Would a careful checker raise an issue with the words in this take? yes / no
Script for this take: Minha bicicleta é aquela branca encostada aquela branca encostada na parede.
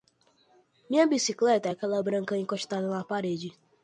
yes